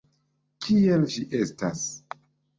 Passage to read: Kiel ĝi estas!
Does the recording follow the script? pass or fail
pass